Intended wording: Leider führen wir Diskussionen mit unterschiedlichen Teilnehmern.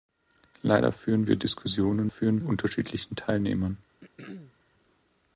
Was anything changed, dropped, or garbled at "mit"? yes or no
yes